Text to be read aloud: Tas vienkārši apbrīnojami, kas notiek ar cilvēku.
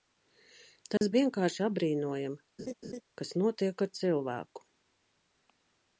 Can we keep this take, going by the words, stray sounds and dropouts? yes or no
no